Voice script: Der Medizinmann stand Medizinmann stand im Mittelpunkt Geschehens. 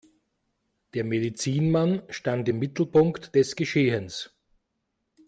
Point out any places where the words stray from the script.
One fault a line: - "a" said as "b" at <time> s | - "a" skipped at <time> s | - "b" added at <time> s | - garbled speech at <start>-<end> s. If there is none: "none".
- "Medizinmann stand" skipped at 2.5 s
- "des" added at 3.3 s